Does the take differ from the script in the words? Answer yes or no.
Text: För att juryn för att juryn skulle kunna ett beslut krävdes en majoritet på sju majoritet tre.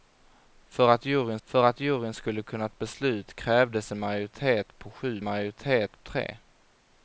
no